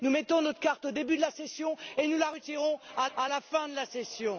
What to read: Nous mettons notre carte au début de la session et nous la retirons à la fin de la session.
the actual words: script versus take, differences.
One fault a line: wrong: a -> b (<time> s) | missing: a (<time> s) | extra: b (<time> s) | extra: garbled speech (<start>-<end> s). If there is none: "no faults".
extra: à (3.2 s)